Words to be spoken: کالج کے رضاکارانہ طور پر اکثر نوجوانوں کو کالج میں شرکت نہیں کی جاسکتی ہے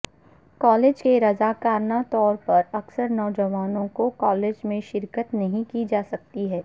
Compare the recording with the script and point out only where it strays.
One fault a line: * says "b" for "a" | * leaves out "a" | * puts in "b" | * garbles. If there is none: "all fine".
all fine